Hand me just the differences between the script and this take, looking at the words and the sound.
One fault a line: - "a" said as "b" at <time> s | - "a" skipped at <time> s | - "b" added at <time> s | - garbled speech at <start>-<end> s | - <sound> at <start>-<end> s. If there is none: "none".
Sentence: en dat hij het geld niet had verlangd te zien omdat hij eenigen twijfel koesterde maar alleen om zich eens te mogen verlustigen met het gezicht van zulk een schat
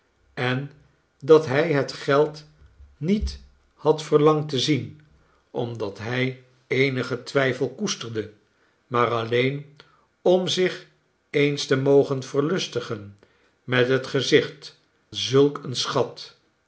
- "van" skipped at 14.8 s